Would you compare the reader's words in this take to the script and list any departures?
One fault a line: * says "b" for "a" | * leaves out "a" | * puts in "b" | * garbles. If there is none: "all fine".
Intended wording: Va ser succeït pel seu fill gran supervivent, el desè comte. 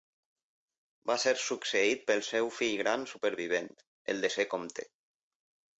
all fine